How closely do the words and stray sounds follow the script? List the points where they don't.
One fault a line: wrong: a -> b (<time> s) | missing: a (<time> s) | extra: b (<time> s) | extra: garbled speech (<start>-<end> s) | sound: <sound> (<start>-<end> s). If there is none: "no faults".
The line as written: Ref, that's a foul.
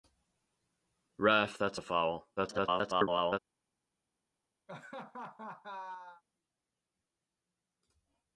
extra: garbled speech (2.4-3.4 s)
sound: laugh (4.7-6.2 s)